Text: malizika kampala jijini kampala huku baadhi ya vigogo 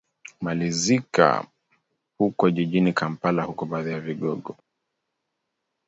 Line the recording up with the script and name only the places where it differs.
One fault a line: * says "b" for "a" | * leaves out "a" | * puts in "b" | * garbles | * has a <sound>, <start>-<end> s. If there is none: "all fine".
* says "huko" for "kampala"